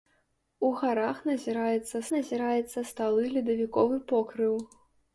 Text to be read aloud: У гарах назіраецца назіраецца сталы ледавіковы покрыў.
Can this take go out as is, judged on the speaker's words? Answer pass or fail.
pass